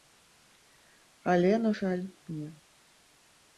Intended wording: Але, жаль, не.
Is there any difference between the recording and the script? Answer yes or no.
yes